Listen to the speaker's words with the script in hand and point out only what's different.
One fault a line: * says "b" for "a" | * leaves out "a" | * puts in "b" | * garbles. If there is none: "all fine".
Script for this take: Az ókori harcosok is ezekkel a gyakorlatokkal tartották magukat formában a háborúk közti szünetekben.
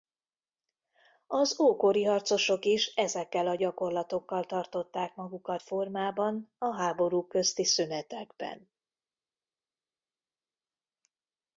all fine